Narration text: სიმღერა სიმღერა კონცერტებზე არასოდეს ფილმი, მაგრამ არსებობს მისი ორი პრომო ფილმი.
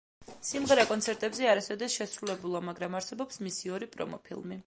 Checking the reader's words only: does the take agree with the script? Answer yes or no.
no